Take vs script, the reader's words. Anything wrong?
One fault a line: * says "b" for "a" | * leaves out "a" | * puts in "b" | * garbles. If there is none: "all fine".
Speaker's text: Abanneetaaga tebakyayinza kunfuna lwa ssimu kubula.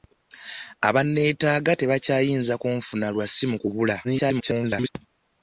* garbles